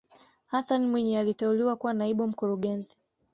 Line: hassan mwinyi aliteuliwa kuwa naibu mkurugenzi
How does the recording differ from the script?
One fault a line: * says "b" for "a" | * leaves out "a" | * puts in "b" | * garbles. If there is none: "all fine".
all fine